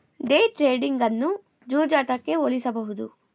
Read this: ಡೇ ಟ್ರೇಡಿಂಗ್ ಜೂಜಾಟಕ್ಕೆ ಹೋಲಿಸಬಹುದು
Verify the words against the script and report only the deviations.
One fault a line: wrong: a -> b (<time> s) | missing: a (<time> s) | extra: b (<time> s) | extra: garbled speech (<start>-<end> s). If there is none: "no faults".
extra: ಅನ್ನು (1.0 s)